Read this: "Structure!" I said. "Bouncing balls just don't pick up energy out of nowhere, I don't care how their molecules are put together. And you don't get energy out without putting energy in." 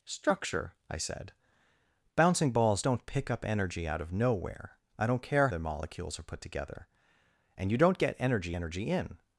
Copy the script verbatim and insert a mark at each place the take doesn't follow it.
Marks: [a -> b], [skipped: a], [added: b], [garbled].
"Structure!" I said. "Bouncing balls [skipped: just] don't pick up energy out of nowhere, I don't care [skipped: how] their molecules are put together. And you don't get energy [skipped: out without putting] energy in."